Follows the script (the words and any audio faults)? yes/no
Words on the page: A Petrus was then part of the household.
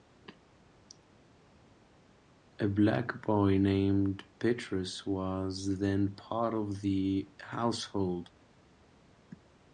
no